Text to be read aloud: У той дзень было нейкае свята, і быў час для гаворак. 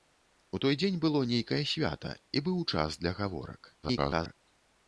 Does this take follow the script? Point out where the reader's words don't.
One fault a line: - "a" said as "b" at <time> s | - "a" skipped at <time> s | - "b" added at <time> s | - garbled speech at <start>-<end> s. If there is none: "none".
- garbled speech at 3.8-4.4 s